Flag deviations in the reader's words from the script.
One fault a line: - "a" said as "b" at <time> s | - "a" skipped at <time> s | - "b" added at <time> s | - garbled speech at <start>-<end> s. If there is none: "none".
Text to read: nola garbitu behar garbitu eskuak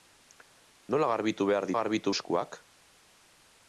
none